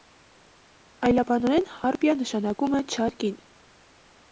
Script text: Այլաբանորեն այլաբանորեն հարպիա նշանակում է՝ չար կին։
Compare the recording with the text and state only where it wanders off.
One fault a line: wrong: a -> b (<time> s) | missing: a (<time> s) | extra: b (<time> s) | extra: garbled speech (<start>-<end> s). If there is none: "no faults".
missing: այլաբանորեն (1.7 s)